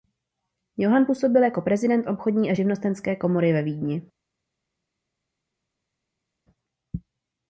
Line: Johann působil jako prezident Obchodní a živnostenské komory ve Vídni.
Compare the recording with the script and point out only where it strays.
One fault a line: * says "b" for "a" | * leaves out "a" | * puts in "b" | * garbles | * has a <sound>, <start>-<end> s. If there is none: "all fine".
all fine